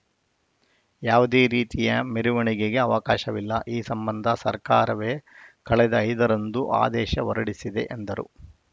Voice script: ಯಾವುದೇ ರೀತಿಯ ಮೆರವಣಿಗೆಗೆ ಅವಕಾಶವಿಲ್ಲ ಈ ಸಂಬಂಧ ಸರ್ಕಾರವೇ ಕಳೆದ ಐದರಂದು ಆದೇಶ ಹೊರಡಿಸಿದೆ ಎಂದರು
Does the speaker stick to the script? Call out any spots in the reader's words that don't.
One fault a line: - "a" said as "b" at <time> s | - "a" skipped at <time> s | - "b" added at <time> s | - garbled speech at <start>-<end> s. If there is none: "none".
none